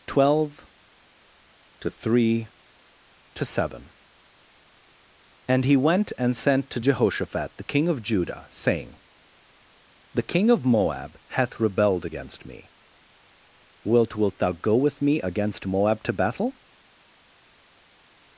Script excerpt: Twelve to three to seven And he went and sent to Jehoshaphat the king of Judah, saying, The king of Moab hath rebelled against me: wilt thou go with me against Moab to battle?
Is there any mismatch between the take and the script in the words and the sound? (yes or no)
yes